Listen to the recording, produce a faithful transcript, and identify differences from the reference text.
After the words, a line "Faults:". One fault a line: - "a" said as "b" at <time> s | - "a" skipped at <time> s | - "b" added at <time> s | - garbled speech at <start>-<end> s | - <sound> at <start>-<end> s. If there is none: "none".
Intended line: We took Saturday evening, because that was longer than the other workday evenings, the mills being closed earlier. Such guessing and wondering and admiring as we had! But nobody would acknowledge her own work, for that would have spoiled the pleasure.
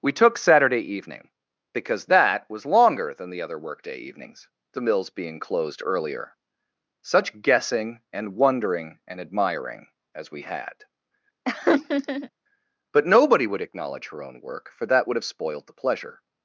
We took Saturday evening, because that was longer than the other workday evenings, the mills being closed earlier. Such guessing and wondering and admiring as we had! But nobody would acknowledge her own work, for that would have spoiled the pleasure.
Faults:
- laugh at 11.5-12.3 s